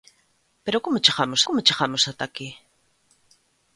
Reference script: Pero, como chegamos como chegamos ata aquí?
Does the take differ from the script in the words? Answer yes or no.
no